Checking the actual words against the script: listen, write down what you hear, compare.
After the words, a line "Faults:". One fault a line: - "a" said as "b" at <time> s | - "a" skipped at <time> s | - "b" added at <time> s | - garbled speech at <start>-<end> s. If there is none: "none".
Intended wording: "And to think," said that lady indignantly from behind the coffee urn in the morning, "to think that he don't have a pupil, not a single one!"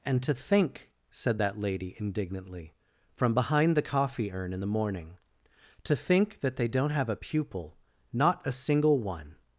"And to think," said that lady indignantly from behind the coffee urn in the morning, "to think that they don't have a pupil, not a single one!"
Faults:
- "he" said as "they" at 6.6 s